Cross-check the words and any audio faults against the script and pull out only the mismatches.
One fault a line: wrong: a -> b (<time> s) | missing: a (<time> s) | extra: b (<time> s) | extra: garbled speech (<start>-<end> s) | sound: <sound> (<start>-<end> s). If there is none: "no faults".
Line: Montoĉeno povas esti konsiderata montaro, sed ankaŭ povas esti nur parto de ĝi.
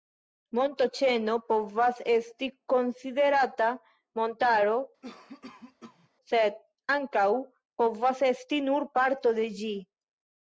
sound: cough (5.0-6.1 s)